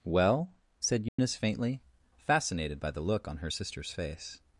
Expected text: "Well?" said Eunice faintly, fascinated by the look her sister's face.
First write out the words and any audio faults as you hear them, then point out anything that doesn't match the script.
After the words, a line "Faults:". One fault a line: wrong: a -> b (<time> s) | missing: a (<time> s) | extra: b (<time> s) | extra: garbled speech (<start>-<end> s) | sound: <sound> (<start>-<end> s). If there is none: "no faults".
"Well?" said Eunice faintly, fascinated by the look on her sister's face.
Faults:
sound: dropout (1.1-1.2 s)
extra: on (3.3 s)